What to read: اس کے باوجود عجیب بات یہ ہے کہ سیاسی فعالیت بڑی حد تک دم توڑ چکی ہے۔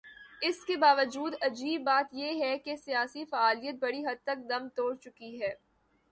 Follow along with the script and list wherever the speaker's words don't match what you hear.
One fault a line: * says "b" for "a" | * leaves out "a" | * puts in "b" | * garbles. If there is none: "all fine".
all fine